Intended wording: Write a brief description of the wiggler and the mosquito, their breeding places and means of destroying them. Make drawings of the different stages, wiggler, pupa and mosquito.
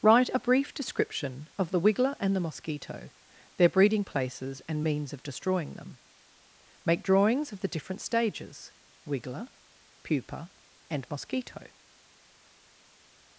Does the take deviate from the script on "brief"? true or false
false